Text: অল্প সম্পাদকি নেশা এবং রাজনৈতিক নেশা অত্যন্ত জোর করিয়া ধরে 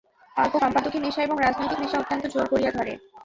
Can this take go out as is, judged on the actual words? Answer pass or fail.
pass